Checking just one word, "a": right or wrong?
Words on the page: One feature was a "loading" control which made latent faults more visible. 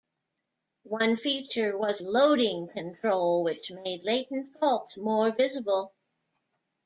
wrong